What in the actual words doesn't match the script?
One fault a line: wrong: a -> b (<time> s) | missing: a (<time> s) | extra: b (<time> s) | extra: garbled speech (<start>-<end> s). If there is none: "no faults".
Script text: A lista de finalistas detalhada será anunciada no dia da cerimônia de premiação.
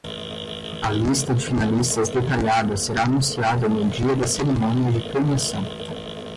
no faults